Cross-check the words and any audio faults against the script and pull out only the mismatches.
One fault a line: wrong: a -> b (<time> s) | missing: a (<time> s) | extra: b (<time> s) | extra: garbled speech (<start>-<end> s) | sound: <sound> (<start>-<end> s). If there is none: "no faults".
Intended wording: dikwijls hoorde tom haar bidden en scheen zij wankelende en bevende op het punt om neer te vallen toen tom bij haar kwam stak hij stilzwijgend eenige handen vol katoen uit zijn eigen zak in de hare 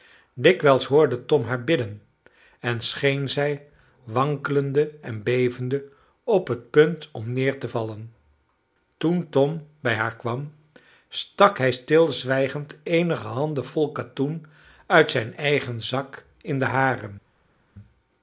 no faults